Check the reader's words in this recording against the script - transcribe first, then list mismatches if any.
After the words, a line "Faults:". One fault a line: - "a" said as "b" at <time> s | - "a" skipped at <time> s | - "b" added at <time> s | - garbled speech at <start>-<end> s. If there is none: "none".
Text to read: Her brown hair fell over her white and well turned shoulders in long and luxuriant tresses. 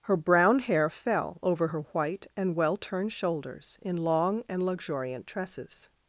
Her brown hair fell over her white and well turned shoulders in long and luxuriant tresses.
Faults:
none